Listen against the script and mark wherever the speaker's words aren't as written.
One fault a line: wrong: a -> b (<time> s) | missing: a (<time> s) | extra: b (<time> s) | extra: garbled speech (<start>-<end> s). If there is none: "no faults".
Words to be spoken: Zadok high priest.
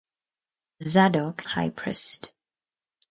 no faults